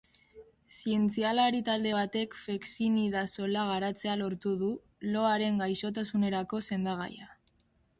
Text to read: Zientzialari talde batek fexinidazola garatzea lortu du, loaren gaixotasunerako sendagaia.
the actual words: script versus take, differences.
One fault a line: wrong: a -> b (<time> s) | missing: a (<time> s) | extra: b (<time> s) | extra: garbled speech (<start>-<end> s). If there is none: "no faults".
no faults